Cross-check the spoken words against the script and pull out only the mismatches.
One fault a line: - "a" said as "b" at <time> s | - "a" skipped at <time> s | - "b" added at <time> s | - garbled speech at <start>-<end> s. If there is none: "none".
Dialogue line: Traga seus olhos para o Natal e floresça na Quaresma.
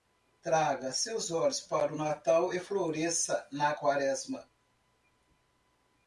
none